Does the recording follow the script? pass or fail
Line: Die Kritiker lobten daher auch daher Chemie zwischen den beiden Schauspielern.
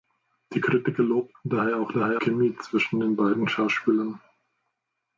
pass